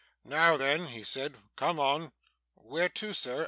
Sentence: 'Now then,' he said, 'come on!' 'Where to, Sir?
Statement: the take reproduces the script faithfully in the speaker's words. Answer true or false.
true